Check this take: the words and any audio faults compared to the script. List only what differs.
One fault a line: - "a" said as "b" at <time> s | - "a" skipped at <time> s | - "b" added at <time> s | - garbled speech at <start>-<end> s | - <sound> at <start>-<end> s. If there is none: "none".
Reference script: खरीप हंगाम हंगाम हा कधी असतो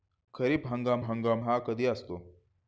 none